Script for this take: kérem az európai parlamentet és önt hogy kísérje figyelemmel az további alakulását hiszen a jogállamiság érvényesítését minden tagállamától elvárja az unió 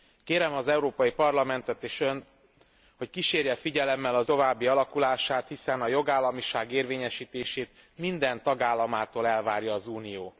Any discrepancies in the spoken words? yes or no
no